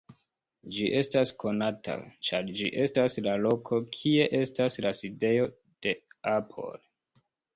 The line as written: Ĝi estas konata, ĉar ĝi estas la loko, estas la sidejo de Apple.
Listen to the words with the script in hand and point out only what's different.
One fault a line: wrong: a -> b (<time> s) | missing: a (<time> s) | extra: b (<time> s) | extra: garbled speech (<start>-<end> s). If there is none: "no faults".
extra: kie (4.0 s)